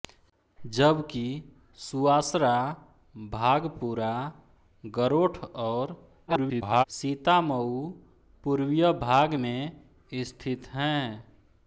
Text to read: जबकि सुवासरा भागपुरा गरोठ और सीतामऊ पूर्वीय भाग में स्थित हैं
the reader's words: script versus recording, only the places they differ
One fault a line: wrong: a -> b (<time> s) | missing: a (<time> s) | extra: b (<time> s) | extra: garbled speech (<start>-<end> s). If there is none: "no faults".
extra: garbled speech (6.3-6.8 s)